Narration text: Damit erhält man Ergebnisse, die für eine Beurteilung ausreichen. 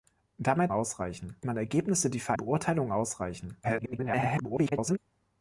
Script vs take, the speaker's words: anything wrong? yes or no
yes